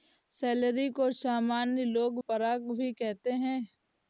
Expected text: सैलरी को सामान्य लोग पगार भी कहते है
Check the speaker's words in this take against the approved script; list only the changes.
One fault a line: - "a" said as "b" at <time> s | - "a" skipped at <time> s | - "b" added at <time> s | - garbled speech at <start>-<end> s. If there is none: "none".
none